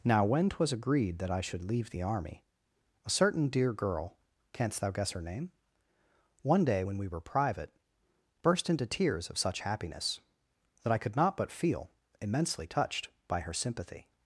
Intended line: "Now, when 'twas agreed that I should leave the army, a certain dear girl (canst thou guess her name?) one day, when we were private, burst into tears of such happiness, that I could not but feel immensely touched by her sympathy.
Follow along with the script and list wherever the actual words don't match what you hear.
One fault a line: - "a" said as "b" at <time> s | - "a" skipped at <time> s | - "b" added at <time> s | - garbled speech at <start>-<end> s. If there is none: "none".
none